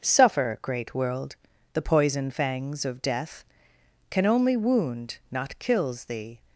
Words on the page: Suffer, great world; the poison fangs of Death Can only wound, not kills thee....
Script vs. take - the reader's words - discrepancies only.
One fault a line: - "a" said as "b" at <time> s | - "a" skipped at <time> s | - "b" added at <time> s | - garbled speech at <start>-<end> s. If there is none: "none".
none